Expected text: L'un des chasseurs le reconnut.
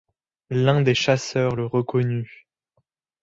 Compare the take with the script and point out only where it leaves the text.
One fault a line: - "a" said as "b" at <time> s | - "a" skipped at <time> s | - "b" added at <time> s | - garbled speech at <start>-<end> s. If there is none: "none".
none